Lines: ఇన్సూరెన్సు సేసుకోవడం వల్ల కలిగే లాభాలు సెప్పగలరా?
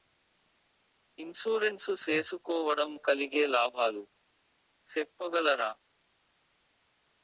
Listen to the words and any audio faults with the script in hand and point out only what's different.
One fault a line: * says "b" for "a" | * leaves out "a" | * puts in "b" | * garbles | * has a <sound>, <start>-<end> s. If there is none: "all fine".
* leaves out "వల్ల"